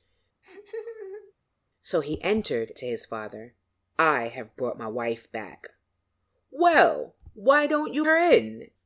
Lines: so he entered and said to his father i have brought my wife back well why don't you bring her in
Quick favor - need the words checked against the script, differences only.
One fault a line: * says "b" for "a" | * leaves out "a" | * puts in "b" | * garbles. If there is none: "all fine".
* leaves out "and said"
* leaves out "bring"